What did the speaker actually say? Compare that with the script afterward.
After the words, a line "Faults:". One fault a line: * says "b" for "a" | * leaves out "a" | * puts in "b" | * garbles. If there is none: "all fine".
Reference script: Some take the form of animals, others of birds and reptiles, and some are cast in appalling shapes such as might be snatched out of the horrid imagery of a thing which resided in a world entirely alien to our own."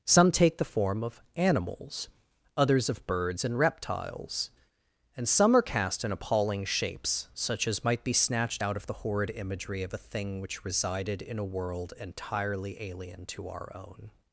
Some take the form of animals, others of birds and reptiles, and some are cast in appalling shapes such as might be snatched out of the horrid imagery of a thing which resided in a world entirely alien to our own."
Faults:
all fine